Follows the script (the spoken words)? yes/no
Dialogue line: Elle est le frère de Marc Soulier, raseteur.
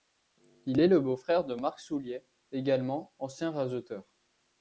no